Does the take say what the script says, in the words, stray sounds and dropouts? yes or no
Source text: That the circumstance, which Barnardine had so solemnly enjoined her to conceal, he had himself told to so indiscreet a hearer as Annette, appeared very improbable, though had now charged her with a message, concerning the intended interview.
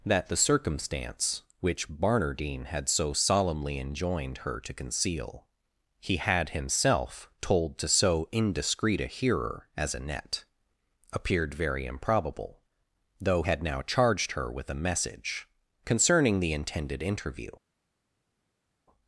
yes